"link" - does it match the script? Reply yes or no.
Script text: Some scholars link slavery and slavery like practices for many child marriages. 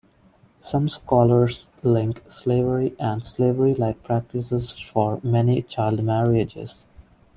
yes